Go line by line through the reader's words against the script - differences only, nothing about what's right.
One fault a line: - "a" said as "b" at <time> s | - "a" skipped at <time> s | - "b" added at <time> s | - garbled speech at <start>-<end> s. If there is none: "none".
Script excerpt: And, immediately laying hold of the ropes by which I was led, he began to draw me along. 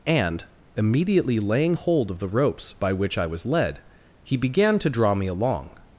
none